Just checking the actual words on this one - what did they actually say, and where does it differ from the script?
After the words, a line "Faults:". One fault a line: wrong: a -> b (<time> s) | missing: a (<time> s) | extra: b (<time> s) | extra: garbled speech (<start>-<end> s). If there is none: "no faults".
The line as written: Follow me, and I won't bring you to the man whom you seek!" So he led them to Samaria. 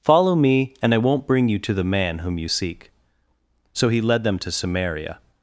Follow me, and I won't bring you to the man whom you seek!" So he led them to Samaria.
Faults:
no faults